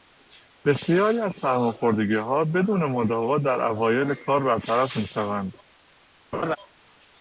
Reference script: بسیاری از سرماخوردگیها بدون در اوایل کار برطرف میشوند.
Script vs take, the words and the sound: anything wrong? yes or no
yes